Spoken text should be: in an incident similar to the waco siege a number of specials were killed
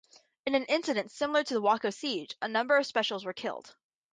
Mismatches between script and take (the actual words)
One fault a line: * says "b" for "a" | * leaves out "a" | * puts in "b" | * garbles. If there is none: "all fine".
all fine